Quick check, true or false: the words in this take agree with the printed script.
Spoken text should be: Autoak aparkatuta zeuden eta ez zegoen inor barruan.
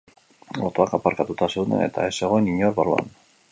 true